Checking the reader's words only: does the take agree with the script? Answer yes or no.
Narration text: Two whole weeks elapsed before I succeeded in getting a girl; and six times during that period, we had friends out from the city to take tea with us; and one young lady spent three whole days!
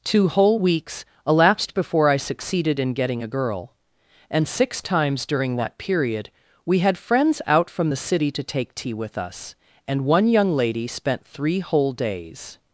yes